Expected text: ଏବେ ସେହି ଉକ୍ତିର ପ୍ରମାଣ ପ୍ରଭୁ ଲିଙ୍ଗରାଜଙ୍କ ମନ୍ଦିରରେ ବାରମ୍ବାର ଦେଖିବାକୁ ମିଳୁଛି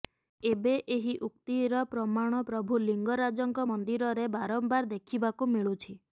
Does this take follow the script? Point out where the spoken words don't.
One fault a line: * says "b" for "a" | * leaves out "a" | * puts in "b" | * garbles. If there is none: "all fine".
* says "ଏହି" for "ସେହି"